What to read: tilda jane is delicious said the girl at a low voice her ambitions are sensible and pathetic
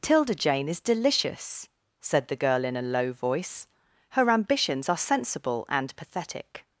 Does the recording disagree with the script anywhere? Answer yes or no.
yes